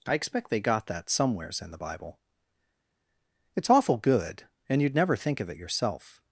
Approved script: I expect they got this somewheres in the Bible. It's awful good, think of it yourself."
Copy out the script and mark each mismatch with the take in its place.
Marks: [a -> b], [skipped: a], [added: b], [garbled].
I expect they got [this -> that] somewheres in the Bible. It's awful good, [added: and you'd never] think of it yourself."